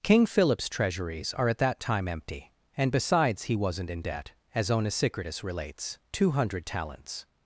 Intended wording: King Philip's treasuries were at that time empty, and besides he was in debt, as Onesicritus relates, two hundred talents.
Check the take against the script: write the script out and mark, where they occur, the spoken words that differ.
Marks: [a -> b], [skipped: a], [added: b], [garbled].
King Philip's treasuries [were -> are] at that time empty, and besides he [was -> wasn't] in debt, as Onesicritus relates, two hundred talents.